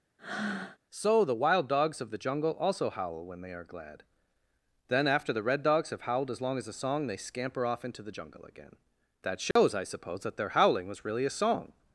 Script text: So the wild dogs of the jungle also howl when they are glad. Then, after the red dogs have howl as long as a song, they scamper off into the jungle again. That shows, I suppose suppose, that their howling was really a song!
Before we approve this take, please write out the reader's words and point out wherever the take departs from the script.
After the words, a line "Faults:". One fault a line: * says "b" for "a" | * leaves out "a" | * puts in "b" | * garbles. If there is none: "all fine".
So the wild dogs of the jungle also howl when they are glad. Then, after the red dogs have howled as long as a song, they scamper off into the jungle again. That shows, I suppose, that their howling was really a song!
Faults:
* says "howled" for "howl"
* leaves out "suppose"